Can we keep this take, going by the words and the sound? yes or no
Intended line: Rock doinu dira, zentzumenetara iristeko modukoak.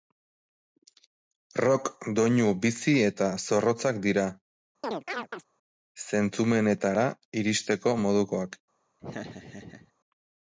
no